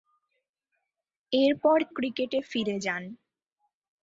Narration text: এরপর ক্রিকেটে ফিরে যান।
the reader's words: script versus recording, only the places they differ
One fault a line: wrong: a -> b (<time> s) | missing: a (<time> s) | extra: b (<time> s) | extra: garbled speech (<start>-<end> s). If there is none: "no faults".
no faults